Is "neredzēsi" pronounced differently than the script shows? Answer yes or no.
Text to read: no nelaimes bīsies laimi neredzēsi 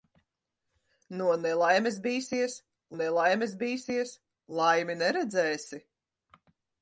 no